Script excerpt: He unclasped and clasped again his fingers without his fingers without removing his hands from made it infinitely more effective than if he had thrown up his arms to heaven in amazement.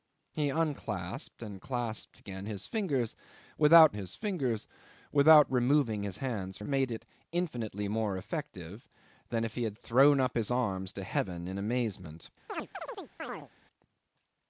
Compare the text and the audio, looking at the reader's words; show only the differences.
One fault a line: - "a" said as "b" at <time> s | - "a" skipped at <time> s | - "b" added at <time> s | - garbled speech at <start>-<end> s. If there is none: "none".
none